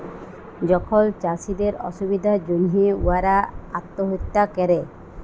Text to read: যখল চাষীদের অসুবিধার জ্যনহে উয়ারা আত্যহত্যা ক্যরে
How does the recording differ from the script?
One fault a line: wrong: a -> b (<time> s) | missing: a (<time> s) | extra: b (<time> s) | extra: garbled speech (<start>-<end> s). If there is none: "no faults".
no faults